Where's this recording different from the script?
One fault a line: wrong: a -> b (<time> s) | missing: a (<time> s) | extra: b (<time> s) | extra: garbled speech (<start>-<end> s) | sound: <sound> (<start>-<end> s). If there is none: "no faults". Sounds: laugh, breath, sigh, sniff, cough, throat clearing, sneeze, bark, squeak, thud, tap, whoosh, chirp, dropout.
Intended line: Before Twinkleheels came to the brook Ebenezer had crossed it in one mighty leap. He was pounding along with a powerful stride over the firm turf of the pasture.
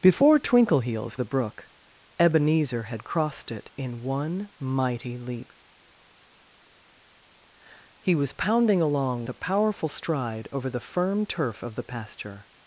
missing: came to (1.2 s)
missing: with (9.2 s)